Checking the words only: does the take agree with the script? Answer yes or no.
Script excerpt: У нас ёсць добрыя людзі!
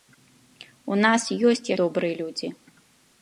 yes